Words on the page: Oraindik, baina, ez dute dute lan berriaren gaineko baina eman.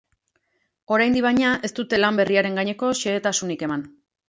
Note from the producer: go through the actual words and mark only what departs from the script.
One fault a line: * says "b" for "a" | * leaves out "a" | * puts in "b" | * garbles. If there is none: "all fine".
* leaves out "dute"
* says "xehetasunik" for "baina"